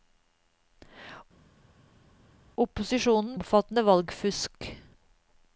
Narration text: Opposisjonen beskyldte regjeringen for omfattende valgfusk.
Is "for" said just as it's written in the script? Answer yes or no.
no